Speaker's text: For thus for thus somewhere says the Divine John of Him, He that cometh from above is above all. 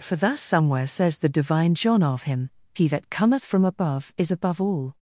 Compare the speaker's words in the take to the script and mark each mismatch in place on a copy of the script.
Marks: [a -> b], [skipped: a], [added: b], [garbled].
For thus [skipped: for thus] somewhere says the Divine John of Him, He that cometh from above is above all.